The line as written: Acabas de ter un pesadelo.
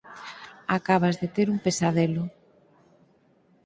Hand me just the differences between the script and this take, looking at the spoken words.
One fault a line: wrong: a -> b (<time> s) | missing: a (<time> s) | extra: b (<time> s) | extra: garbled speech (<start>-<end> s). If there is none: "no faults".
no faults